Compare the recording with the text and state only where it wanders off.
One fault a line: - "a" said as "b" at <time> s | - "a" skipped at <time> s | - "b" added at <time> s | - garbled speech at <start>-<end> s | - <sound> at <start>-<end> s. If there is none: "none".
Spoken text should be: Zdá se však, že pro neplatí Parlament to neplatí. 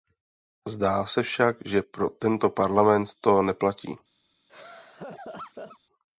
- "neplatí" said as "tento" at 2.1 s
- laugh at 4.5-5.8 s